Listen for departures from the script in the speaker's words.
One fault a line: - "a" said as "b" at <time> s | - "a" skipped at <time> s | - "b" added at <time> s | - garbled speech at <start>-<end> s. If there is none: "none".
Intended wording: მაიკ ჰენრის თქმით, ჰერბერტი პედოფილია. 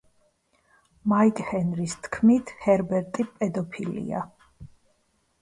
none